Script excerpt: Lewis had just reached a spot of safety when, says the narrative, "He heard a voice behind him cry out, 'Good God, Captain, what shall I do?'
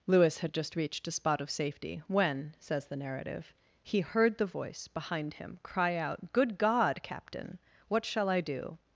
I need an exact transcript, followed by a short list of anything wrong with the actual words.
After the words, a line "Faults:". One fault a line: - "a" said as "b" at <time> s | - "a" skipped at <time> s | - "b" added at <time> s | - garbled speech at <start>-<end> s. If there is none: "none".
Lewis had just reached a spot of safety when, says the narrative, "He heard the voice behind him cry out, 'Good God, Captain, what shall I do?'
Faults:
- "a" said as "the" at 4.4 s